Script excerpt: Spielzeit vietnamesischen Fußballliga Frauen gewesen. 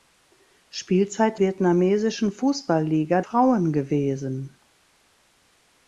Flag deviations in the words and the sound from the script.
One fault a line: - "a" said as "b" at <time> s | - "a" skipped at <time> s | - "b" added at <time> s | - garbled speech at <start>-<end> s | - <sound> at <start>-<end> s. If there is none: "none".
none